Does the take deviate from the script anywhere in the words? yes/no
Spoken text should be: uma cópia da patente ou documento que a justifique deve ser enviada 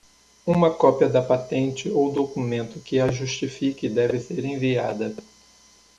no